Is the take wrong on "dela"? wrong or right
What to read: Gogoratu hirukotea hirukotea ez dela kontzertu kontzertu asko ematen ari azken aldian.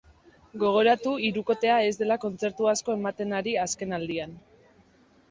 right